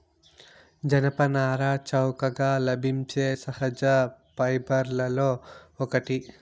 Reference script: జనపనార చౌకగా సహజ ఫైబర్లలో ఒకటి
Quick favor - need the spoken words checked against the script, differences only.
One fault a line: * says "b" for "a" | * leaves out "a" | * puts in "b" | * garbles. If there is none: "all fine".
* puts in "లభించే"